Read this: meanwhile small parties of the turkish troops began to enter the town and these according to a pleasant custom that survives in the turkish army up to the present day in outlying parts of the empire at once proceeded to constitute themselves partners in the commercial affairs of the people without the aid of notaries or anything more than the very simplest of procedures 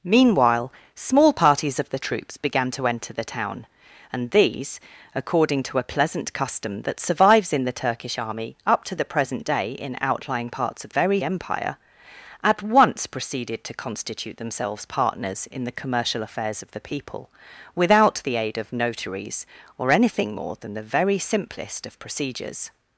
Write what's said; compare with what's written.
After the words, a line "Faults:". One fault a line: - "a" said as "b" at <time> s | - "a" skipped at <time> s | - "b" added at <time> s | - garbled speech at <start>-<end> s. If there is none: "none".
meanwhile small parties of the troops began to enter the town and these according to a pleasant custom that survives in the turkish army up to the present day in outlying parts of very empire at once proceeded to constitute themselves partners in the commercial affairs of the people without the aid of notaries or anything more than the very simplest of procedures
Faults:
- "turkish" skipped at 2.0 s
- "the" said as "very" at 10.9 s